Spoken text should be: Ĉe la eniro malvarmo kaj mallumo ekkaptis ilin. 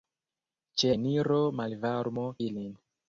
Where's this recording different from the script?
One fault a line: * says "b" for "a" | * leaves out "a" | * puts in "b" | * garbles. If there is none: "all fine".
* leaves out "la"
* leaves out "kaj mallumo ekkaptis"